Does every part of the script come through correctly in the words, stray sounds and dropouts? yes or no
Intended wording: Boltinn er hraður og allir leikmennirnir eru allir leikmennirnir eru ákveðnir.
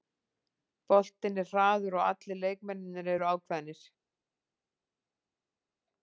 no